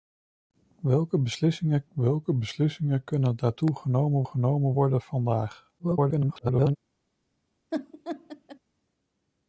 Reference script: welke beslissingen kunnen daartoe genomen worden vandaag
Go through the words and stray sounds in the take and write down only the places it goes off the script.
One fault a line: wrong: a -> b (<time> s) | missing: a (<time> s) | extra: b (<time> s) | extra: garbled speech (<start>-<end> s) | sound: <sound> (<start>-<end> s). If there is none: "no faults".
extra: welke beslissingen (1.9 s)
extra: genomen (4.3 s)
extra: garbled speech (5.8-6.8 s)
sound: laugh (7.7-8.6 s)